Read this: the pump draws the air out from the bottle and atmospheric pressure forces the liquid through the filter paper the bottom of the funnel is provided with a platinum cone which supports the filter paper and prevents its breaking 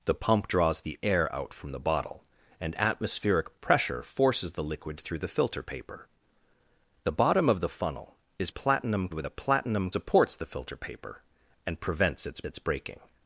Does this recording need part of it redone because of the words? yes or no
yes